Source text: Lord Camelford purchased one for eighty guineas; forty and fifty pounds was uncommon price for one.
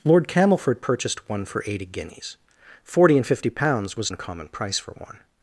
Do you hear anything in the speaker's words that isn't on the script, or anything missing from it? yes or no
no